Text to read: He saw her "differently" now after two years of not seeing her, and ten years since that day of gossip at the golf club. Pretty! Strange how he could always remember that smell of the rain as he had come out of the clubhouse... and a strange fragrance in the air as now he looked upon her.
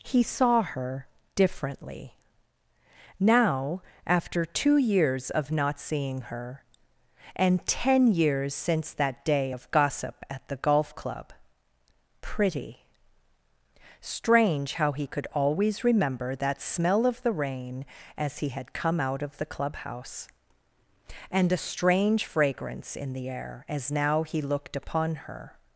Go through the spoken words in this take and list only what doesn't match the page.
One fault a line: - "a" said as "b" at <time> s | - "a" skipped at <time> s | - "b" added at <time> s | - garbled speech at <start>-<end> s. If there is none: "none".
none